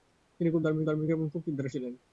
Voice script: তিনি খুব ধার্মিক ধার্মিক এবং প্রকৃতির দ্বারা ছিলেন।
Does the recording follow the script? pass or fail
pass